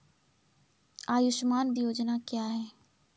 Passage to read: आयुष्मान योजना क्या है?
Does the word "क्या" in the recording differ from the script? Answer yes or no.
no